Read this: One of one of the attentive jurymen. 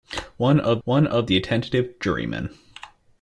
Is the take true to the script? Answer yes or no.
yes